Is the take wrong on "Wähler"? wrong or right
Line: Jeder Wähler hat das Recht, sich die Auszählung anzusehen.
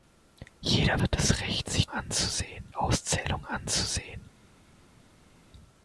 wrong